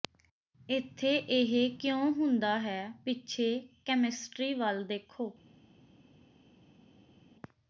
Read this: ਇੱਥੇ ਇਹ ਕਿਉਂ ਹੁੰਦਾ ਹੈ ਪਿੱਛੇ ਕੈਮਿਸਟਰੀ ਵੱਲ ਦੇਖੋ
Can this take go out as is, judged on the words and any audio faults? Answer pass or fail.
pass